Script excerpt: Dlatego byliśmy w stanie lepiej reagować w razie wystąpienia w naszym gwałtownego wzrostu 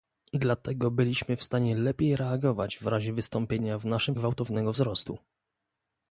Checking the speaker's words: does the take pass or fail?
pass